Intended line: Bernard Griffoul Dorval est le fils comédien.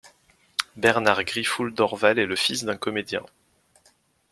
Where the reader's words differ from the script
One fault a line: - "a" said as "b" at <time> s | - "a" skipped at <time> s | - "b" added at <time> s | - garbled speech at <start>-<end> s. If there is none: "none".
- "d'un" added at 2.6 s